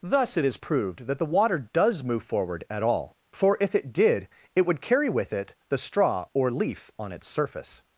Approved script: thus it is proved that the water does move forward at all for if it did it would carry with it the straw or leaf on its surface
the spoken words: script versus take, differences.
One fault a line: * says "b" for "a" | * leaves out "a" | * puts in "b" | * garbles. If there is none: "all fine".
all fine